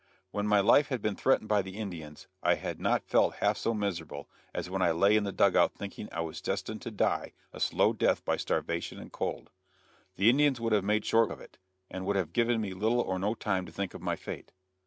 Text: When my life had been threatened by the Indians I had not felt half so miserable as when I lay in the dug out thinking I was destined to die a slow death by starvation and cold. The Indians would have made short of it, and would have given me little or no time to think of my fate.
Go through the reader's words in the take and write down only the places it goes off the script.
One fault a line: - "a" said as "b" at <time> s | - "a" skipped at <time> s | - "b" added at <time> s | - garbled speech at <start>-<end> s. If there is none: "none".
none